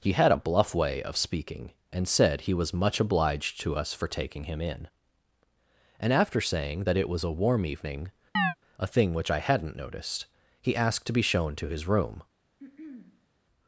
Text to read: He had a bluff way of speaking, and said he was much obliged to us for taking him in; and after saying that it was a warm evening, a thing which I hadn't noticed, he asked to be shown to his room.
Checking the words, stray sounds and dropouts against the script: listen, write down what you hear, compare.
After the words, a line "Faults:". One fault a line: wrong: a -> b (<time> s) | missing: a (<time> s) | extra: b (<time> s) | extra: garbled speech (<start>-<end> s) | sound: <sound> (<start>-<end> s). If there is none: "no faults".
He had a bluff way of speaking, and said he was much obliged to us for taking him in; and after saying that it was a warm evening, a thing which I hadn't noticed, he asked to be shown to his room.
Faults:
sound: chirp (8.4-8.5 s)
sound: throat clearing (12.6-13.3 s)